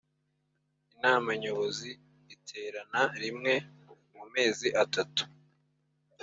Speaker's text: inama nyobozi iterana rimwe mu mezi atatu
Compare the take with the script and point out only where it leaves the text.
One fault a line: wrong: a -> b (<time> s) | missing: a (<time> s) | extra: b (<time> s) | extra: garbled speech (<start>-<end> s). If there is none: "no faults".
no faults